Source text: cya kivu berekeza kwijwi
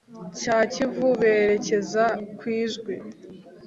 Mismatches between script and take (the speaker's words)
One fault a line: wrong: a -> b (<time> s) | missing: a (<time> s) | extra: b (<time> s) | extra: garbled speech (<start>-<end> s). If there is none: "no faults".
no faults